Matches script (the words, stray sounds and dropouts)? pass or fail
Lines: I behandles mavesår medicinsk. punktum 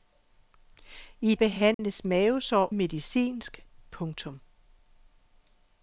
fail